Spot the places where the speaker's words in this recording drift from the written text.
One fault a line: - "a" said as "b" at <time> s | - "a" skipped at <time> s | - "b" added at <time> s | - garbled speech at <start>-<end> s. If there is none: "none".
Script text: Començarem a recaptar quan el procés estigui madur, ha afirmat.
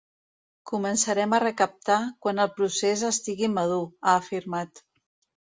none